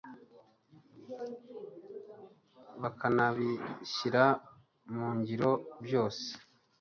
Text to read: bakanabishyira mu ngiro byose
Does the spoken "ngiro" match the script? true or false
true